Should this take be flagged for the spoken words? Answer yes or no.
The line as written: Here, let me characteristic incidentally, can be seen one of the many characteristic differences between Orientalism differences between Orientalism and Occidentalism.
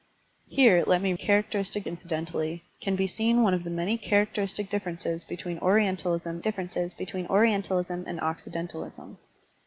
no